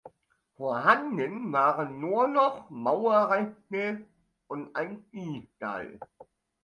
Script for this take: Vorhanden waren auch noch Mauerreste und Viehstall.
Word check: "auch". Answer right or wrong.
wrong